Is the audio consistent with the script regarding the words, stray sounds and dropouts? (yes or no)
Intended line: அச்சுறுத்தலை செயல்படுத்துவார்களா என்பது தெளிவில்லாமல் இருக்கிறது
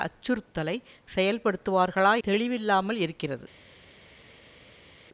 no